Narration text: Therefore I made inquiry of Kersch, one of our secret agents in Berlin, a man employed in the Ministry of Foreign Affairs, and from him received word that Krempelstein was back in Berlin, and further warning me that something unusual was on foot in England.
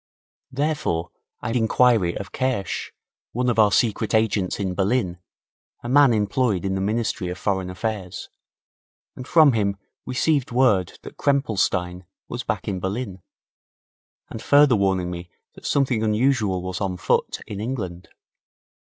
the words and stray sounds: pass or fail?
fail